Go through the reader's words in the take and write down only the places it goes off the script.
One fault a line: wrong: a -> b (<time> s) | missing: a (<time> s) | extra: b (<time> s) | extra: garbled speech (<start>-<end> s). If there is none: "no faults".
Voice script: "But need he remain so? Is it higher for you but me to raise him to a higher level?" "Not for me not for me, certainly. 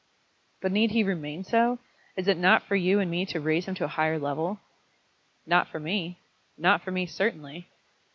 wrong: higher -> not (2.4 s)
wrong: but -> and (3.0 s)